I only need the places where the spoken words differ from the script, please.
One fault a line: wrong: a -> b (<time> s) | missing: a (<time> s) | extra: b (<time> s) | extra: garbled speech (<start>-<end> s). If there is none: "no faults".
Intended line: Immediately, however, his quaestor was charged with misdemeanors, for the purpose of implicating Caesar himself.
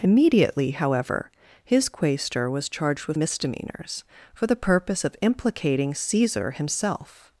no faults